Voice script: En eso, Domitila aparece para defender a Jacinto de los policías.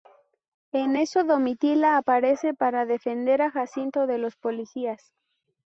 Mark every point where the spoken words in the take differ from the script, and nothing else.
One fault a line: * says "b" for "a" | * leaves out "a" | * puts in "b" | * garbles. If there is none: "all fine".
all fine